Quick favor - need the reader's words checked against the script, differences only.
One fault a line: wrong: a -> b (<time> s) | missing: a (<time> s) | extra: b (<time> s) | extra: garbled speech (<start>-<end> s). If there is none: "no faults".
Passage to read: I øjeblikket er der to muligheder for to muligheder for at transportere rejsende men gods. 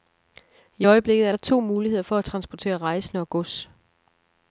missing: to muligheder for (2.2 s)
wrong: men -> og (3.2 s)